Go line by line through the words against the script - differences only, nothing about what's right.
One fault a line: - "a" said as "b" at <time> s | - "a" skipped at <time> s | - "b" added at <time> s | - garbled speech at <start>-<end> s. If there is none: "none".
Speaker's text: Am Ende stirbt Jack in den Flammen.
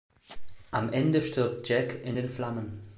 none